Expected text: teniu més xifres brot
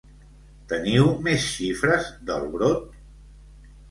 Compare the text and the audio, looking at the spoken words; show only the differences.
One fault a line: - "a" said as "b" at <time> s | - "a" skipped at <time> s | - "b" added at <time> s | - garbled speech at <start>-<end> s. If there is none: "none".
- "del" added at 2.3 s